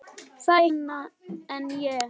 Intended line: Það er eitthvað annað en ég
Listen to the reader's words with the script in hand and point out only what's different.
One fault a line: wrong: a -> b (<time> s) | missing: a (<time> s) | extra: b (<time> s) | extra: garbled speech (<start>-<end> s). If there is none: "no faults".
missing: eitthvað (0.7 s)